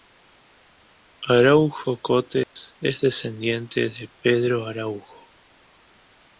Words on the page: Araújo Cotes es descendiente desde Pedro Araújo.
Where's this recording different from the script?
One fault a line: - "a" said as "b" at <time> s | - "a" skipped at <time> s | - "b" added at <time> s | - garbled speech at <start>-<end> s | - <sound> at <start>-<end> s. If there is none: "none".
- dropout at 2.4-2.6 s
- "desde" said as "de" at 3.8 s